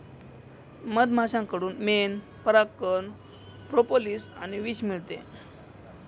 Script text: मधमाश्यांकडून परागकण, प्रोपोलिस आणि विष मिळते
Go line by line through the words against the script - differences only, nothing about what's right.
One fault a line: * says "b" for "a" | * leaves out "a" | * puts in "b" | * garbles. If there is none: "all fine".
* puts in "मेण"